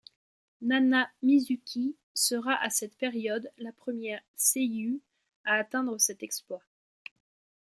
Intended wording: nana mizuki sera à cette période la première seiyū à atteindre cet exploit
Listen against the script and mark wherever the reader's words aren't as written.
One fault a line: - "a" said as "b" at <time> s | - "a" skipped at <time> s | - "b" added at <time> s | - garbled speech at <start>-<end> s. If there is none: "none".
none